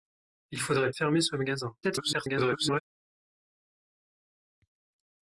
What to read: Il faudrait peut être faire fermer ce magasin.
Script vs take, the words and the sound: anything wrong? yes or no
yes